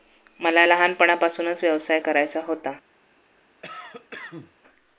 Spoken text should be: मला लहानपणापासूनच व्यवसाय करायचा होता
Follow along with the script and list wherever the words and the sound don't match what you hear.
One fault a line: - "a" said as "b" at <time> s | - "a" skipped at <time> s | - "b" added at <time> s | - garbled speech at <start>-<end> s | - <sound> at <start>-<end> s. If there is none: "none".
- cough at 3.6-4.5 s